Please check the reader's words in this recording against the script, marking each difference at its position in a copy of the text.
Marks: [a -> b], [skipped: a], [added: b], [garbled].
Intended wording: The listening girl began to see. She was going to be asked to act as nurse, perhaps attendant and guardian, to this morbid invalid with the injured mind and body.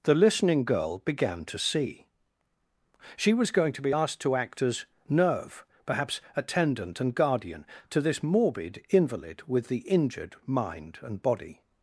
The listening girl began to see. She was going to be asked to act as [nurse, -> nerve] perhaps attendant and guardian, to this morbid invalid with the injured mind and body.